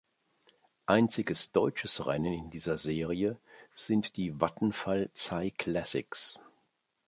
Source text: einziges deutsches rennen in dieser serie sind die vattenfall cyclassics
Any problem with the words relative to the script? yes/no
no